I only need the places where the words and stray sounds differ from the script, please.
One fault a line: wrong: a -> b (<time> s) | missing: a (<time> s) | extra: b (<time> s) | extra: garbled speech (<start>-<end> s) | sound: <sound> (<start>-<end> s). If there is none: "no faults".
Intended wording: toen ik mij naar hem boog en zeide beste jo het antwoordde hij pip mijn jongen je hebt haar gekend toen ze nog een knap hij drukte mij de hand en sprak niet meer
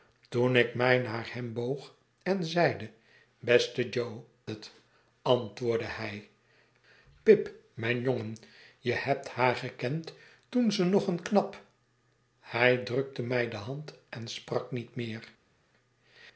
no faults